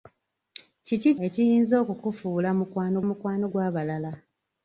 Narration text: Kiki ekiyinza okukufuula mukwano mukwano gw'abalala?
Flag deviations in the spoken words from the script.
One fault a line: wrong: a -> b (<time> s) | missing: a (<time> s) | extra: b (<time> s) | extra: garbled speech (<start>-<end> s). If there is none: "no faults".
no faults